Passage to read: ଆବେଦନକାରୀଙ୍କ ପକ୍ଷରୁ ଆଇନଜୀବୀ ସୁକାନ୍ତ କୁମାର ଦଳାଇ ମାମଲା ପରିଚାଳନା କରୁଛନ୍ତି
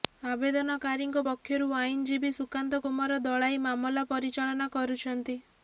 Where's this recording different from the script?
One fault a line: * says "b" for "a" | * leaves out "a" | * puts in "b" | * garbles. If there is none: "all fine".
all fine